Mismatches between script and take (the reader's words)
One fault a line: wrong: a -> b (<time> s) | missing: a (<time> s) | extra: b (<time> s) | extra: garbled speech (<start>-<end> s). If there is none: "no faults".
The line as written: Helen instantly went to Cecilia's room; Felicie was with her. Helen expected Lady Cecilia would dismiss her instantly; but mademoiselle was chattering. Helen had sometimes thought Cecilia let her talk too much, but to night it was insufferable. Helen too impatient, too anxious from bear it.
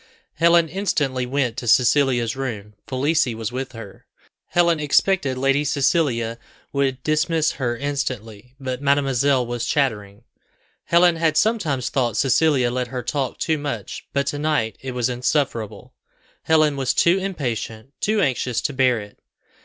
extra: was (16.8 s)
wrong: from -> to (18.6 s)